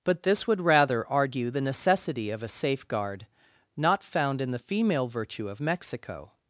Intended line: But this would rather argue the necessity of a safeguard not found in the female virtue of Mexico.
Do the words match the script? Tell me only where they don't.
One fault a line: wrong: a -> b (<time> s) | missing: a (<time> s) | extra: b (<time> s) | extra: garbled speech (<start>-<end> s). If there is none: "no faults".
no faults